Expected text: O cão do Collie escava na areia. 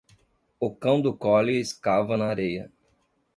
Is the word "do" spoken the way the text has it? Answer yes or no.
yes